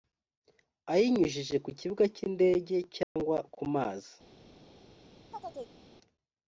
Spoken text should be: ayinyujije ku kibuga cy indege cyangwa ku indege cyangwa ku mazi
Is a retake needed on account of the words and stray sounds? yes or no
yes